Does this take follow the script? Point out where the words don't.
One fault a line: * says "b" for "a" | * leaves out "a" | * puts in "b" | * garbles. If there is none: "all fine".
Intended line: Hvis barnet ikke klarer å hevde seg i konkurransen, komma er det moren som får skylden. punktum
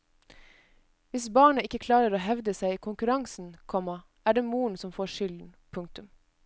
all fine